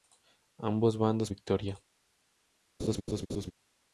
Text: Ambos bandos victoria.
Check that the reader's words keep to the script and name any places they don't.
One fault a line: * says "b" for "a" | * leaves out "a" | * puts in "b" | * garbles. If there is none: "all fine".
all fine